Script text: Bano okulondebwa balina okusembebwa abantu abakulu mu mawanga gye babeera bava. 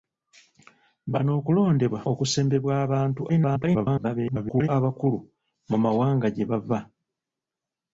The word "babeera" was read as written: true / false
false